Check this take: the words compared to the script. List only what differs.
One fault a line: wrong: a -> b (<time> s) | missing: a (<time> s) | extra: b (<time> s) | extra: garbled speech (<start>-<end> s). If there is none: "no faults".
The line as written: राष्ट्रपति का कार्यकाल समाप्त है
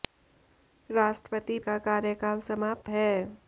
no faults